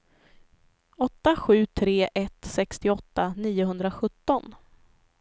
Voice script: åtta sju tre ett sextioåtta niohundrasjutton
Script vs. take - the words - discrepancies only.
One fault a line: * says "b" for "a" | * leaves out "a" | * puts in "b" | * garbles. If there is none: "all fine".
all fine